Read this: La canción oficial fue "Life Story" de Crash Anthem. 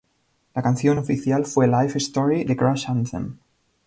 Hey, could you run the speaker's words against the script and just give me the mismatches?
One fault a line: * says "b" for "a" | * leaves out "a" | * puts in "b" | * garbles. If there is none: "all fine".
all fine